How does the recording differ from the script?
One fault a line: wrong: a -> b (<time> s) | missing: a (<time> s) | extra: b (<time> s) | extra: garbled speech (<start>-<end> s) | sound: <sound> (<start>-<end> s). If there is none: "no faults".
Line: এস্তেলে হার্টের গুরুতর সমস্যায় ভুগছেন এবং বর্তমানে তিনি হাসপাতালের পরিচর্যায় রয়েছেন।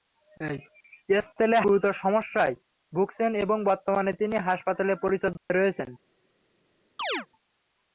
missing: হার্টের (1.6 s)
sound: dropout (5.4-5.5 s)
sound: chirp (7.0-7.3 s)